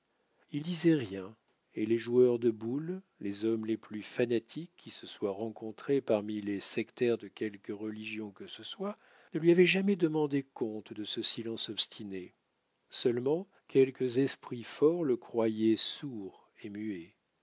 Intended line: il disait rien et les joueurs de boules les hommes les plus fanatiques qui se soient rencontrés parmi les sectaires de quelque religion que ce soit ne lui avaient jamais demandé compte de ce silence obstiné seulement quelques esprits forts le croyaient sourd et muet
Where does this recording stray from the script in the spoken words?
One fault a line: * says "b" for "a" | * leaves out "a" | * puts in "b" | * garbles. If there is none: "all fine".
all fine